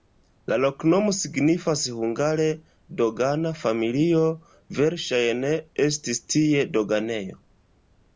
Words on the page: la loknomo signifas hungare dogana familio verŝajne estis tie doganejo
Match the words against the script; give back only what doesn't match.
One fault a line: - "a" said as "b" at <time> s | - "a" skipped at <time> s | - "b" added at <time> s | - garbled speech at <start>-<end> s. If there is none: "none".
none